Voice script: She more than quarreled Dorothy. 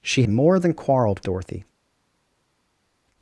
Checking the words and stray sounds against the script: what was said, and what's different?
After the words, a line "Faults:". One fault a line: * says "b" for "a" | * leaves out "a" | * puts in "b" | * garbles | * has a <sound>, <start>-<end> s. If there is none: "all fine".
She more than quarreled Dorothy.
Faults:
all fine